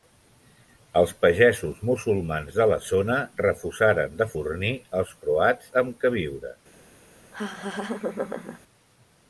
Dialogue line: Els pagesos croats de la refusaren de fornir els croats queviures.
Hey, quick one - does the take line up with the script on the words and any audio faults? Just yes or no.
no